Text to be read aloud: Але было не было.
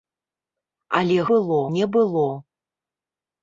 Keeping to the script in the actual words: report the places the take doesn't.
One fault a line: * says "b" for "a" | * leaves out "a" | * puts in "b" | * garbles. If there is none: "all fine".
all fine